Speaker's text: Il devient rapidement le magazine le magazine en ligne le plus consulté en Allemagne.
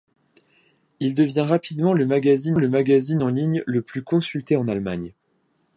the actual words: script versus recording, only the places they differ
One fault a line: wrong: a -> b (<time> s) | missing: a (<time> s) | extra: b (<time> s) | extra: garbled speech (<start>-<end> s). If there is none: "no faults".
no faults